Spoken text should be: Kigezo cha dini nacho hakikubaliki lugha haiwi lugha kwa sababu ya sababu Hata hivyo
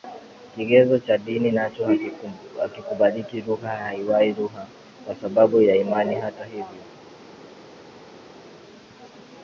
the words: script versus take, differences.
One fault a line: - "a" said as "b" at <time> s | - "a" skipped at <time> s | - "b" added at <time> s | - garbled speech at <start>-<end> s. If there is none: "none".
- "sababu" said as "imani" at 5.7 s